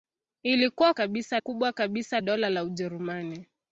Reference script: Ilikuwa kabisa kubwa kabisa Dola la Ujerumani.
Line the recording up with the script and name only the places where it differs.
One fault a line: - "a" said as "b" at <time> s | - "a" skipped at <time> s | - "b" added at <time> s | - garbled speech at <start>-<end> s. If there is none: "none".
none